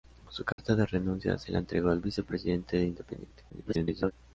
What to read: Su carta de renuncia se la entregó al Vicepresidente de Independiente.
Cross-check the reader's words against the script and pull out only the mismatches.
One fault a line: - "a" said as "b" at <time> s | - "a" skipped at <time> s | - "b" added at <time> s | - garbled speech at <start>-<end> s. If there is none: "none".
- garbled speech at 3.5-4.1 s